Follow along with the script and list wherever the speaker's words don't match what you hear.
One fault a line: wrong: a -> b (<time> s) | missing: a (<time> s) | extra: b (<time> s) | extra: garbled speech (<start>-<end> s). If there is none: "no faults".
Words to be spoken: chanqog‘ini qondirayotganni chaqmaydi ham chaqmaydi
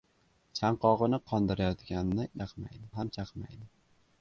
no faults